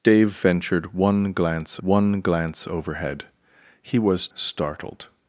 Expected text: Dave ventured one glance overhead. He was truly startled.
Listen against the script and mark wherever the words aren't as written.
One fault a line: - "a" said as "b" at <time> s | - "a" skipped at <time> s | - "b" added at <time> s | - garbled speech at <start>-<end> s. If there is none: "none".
- "one glance" added at 1.8 s
- "truly" skipped at 4.3 s